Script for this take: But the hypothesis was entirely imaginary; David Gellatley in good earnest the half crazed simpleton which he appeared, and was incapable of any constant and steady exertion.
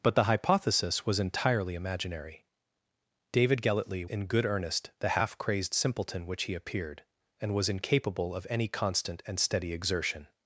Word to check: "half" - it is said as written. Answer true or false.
true